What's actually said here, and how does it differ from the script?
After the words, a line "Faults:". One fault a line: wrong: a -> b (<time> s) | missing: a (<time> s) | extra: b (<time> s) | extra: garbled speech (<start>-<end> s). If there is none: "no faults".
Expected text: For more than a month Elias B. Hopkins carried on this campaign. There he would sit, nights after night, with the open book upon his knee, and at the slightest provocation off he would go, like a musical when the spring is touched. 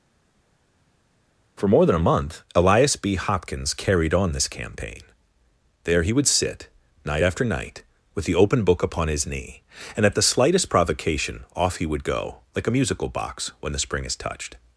For more than a month Elias B. Hopkins carried on this campaign. There he would sit, night after night, with the open book upon his knee, and at the slightest provocation off he would go, like a musical box when the spring is touched.
Faults:
wrong: nights -> night (7.0 s)
extra: box (13.1 s)